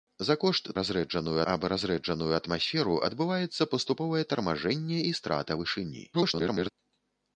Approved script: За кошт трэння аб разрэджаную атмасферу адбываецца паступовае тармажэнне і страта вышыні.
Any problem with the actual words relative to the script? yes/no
yes